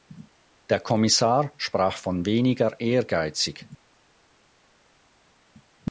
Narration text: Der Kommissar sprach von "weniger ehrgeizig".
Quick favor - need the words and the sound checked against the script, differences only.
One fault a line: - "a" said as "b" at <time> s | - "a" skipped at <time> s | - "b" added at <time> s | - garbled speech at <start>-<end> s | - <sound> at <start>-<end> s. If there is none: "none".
none